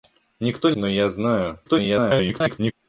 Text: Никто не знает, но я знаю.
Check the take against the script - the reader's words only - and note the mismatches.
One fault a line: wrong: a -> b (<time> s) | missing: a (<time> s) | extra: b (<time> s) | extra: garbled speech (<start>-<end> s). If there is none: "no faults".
missing: не знает (0.7 s)
extra: garbled speech (1.6-2.7 s)